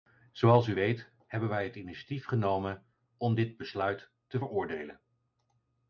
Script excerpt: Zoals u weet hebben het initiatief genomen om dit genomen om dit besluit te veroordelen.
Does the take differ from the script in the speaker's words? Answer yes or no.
yes